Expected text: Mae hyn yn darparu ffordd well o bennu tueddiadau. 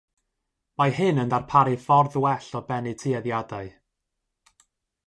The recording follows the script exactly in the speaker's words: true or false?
true